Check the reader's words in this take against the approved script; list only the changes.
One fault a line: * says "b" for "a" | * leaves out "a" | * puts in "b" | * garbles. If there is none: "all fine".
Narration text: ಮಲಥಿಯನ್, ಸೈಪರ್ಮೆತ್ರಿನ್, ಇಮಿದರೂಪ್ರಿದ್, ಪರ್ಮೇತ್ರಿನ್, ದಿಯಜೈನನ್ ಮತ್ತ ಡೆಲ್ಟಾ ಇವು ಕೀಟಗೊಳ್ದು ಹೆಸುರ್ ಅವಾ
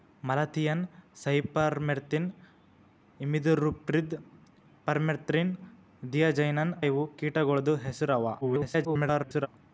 * leaves out "ಮತ್ತ ಡೆಲ್ಟಾ"
* garbles